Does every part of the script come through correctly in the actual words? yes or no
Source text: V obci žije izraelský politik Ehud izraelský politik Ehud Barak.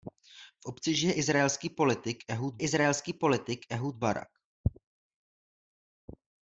yes